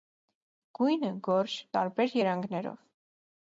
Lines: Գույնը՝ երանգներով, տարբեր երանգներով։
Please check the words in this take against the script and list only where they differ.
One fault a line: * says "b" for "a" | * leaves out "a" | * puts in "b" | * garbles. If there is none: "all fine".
* says "գորշ" for "երանգներով"